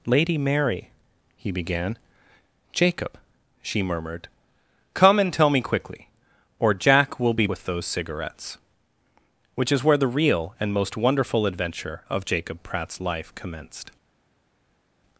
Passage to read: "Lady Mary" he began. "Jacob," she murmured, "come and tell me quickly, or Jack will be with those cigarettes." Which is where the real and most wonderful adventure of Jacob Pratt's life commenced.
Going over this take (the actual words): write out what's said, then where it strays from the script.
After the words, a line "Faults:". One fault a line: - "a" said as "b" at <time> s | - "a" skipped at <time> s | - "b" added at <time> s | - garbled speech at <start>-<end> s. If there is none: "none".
"Lady Mary" he began. "Jacob," she murmured, "come and tell me quickly, or Jack will be with those cigarettes." Which is where the real and most wonderful adventure of Jacob Pratt's life commenced.
Faults:
none